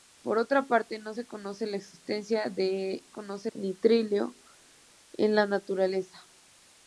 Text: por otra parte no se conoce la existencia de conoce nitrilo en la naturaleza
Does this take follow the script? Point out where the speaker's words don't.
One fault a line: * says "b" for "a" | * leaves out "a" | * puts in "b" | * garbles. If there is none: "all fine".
all fine